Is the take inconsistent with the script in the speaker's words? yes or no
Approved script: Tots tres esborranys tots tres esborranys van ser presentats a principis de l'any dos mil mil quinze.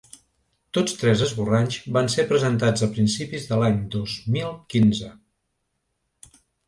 yes